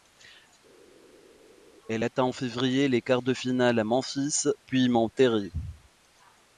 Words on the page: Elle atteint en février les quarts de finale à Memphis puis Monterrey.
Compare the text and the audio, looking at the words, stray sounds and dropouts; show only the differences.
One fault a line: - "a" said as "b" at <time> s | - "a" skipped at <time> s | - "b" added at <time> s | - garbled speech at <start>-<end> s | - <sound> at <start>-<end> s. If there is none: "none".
none